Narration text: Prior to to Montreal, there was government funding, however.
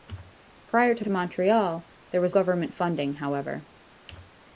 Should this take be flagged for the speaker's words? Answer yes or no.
no